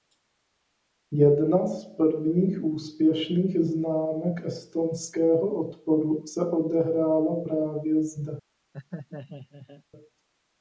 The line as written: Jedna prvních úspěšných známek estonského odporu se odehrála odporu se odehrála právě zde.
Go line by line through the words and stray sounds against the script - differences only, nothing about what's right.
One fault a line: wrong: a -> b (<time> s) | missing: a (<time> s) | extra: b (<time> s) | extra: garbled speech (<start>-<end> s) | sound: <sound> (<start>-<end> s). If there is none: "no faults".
extra: z (1.7 s)
missing: odporu se odehrála (7.4 s)
sound: laugh (8.7-9.8 s)